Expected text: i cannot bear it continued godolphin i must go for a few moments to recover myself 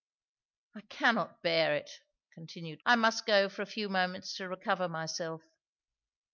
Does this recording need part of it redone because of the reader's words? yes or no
yes